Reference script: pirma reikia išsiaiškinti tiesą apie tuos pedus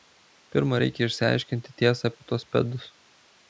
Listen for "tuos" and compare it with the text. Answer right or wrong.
right